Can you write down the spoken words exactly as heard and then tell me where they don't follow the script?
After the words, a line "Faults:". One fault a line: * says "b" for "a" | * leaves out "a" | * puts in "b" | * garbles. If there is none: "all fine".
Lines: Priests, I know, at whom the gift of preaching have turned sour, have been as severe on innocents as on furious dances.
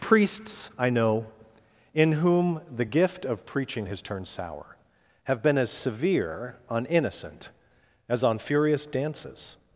Priests, I know, in whom the gift of preaching has turned sour, have been as severe on innocent as on furious dances.
Faults:
* says "in" for "at"
* says "has" for "have"
* says "innocent" for "innocents"